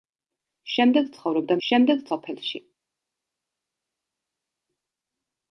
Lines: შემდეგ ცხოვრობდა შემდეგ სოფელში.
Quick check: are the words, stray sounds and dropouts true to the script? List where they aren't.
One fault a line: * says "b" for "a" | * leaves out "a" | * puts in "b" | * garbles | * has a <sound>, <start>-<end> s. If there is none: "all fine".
all fine